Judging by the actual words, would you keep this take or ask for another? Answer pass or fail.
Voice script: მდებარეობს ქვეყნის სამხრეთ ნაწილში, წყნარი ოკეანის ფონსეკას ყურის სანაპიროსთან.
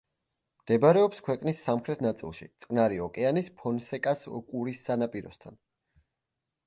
pass